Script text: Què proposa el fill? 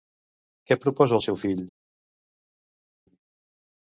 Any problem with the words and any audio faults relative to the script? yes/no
yes